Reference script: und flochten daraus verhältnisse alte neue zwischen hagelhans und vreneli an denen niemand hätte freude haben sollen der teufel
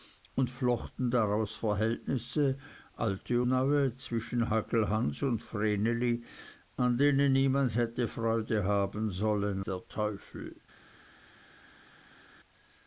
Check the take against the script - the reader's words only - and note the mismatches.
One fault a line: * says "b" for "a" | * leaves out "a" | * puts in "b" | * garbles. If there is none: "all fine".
all fine